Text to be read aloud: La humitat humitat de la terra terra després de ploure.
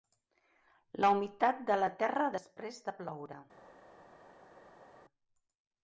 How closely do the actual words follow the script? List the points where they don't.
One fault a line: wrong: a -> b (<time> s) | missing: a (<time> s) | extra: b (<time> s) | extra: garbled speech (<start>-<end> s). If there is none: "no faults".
missing: humitat (1.6 s)
missing: terra (2.3 s)